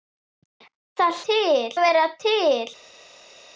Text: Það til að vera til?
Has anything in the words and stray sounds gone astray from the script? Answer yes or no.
no